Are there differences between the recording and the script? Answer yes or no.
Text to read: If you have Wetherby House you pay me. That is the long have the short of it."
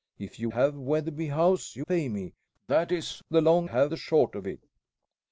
no